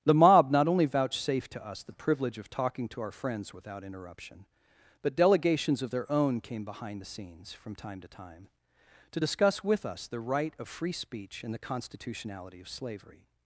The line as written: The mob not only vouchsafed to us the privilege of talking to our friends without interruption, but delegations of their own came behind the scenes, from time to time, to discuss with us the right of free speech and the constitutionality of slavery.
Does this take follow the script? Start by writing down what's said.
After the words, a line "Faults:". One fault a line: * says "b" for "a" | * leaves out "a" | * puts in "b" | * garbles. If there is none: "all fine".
The mob not only vouchsafed to us the privilege of talking to our friends without interruption, but delegations of their own came behind the scenes, from time to time, to discuss with us the right of free speech and the constitutionality of slavery.
Faults:
all fine